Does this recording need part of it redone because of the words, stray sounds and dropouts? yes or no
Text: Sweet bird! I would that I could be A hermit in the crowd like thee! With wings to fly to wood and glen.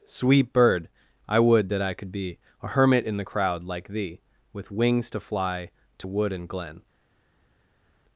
no